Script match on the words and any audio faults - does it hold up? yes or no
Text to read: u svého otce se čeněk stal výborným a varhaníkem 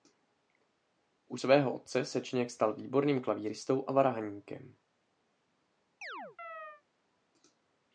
no